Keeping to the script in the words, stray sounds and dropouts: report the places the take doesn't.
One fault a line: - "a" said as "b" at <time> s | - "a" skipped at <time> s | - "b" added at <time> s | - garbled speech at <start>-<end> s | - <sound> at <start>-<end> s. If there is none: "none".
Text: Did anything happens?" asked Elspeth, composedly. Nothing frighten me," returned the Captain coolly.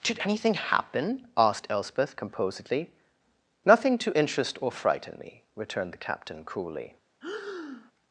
- "happens" said as "happen" at 0.5 s
- "to interest or" added at 4.0 s
- breath at 7.2-7.9 s